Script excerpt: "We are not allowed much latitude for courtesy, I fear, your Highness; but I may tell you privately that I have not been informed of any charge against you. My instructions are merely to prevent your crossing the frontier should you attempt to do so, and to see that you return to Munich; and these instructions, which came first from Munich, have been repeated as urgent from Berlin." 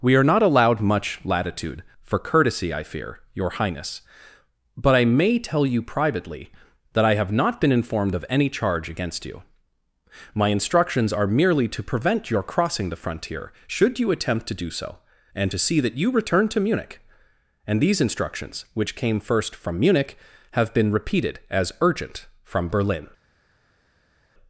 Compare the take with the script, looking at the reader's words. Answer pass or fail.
pass